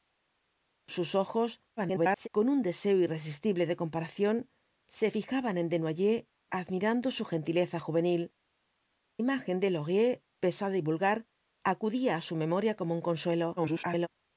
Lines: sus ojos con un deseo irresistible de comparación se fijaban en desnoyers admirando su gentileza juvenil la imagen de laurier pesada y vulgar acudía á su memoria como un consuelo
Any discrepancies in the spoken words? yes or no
yes